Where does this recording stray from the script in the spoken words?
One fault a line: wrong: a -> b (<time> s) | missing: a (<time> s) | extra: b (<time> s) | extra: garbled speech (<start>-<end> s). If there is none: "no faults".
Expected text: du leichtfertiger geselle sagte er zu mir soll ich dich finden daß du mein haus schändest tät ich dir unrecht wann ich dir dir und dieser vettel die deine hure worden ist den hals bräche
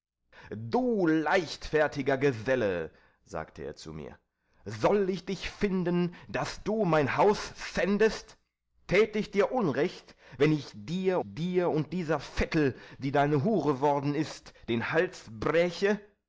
no faults